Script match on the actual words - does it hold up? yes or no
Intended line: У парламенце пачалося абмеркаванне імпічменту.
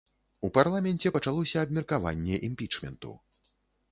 yes